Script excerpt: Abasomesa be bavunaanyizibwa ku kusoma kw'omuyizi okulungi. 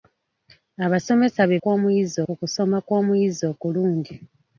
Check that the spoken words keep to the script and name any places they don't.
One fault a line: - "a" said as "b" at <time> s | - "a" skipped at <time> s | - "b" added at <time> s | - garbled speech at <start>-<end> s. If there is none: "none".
- "bavunaanyizibwa" said as "kw'omuyizi" at 1.6 s